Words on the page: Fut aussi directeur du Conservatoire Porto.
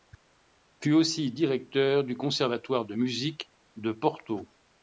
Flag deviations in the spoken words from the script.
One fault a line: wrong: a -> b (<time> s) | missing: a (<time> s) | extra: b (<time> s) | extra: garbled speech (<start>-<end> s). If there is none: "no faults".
extra: de Musique de (2.9 s)